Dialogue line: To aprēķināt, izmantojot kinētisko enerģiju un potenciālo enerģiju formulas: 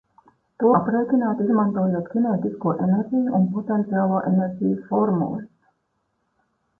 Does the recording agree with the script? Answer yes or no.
yes